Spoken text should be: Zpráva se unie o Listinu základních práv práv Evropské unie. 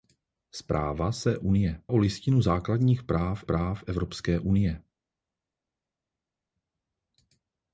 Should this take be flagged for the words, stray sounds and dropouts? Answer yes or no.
no